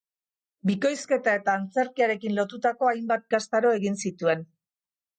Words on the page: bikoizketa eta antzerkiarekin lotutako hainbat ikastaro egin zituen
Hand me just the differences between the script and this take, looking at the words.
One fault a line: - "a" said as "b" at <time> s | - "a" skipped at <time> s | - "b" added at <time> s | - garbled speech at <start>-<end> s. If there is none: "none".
none